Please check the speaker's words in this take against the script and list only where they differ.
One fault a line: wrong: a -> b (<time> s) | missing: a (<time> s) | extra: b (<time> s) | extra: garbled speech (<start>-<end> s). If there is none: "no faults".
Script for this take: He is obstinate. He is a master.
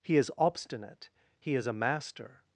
no faults